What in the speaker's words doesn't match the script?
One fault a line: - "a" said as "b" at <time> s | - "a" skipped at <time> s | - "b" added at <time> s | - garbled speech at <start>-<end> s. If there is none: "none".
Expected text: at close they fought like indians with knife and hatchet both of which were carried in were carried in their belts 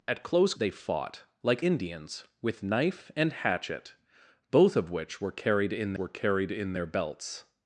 none